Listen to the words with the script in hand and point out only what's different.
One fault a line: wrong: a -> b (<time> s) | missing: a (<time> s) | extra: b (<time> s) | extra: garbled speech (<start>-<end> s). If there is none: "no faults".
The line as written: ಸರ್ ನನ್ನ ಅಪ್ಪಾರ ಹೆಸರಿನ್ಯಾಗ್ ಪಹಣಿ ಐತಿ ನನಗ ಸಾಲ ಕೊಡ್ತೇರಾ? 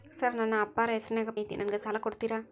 missing: ಪಹಣಿ (1.3 s)